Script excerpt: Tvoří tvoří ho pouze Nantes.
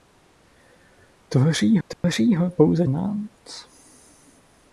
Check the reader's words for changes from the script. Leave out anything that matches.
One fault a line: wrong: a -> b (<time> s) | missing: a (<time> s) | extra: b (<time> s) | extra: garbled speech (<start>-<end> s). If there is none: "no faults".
no faults